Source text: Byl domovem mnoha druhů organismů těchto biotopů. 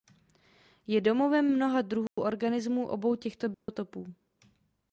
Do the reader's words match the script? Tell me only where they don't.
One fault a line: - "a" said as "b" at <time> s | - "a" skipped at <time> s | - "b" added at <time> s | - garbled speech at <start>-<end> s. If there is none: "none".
- "Byl" said as "Je" at 0.9 s
- "obou" added at 2.9 s